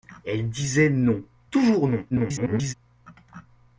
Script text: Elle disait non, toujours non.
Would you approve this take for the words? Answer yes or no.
no